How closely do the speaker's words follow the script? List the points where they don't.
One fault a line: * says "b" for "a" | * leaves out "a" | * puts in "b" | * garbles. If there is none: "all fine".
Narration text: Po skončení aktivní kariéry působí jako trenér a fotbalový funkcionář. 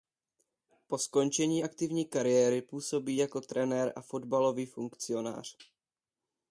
all fine